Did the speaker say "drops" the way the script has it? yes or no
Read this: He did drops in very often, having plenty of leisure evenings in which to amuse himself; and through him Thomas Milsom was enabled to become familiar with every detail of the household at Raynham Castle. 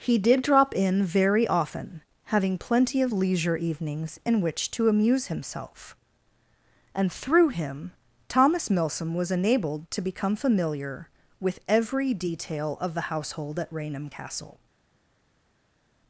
no